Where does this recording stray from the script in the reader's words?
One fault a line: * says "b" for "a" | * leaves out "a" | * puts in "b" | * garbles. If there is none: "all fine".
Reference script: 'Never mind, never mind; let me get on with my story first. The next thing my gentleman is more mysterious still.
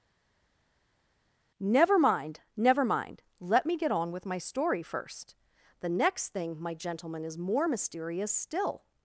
all fine